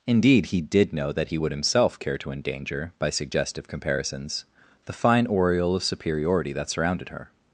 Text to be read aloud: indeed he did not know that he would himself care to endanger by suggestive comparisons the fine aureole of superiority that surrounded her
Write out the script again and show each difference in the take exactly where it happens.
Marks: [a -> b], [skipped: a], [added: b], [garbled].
indeed he did [skipped: not] know that he would himself care to endanger by suggestive comparisons the fine aureole of superiority that surrounded her